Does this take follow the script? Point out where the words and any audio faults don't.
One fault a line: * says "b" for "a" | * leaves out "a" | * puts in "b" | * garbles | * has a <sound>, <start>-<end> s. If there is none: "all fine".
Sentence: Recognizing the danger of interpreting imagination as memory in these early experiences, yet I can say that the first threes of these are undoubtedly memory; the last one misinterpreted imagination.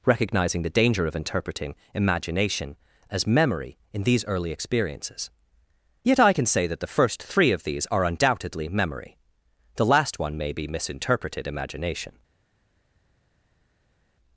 * says "three" for "threes"
* puts in "may be"